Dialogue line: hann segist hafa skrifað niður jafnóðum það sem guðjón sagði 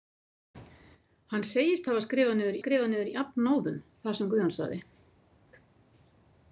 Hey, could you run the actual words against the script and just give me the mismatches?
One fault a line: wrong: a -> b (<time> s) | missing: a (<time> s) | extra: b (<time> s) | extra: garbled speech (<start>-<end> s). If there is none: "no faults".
extra: skrifað niður (2.6 s)